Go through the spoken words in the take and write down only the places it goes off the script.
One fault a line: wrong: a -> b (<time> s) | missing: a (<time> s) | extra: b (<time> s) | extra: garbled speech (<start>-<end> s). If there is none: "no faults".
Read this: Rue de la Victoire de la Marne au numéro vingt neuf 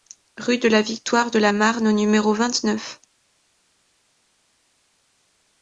no faults